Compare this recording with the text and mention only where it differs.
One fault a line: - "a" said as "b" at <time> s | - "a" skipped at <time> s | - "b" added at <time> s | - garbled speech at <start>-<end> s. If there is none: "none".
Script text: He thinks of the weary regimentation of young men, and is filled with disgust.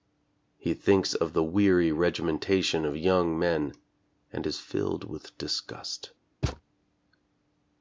none